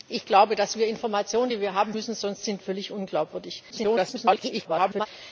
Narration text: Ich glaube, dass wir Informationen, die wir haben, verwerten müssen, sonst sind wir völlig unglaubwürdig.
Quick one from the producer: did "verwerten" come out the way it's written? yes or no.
no